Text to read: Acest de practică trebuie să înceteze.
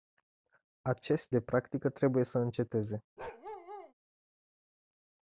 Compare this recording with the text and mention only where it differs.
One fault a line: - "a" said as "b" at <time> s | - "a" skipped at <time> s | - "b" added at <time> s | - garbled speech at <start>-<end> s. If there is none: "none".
none